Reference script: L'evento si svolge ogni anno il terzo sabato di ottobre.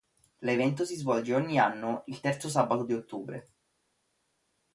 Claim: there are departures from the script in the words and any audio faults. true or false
false